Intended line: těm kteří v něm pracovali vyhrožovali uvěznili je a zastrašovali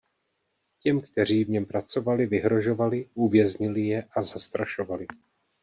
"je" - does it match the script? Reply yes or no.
yes